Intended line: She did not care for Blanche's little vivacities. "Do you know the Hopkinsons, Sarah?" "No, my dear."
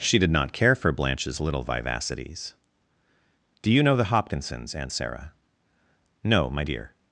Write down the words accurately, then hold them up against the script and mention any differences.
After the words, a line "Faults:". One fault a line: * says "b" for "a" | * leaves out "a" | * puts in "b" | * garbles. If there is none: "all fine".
She did not care for Blanche's little vivacities. "Do you know the Hopkinsons, Aunt Sarah?" "No, my dear."
Faults:
* puts in "Aunt"